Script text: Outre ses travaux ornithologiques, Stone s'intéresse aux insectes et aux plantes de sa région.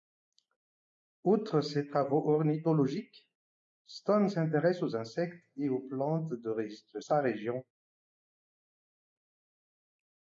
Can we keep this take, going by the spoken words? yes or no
yes